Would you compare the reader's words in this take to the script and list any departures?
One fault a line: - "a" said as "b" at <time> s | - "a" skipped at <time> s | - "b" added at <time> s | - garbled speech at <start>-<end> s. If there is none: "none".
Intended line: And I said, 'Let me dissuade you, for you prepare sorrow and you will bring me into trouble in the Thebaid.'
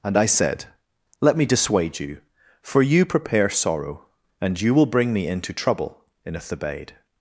- "the" said as "a" at 6.3 s